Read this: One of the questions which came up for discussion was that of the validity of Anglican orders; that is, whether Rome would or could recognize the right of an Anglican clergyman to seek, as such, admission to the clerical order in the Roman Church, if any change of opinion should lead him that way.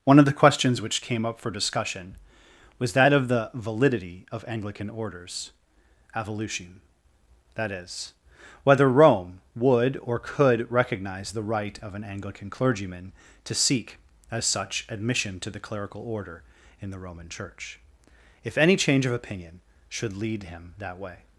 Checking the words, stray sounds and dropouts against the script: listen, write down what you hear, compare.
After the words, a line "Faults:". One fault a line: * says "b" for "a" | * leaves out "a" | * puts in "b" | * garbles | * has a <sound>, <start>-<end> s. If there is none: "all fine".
One of the questions which came up for discussion was that of the validity of Anglican orders; evolution that is, whether Rome would or could recognize the right of an Anglican clergyman to seek, as such, admission to the clerical order in the Roman Church, if any change of opinion should lead him that way.
Faults:
* puts in "evolution"